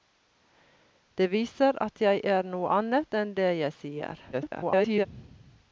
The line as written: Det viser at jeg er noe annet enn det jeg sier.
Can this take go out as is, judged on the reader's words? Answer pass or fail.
fail